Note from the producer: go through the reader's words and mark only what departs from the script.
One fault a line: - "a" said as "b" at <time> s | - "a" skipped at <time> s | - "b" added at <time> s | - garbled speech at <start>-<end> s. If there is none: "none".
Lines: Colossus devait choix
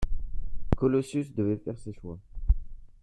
- "faire ses" added at 1.6 s